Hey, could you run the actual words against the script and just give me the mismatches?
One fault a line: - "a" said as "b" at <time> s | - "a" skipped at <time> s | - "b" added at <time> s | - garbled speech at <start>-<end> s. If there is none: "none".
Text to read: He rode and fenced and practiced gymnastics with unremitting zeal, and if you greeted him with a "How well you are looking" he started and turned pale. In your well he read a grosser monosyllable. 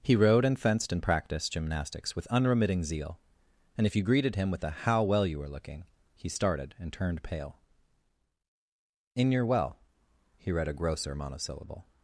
- "are" said as "were" at 5.4 s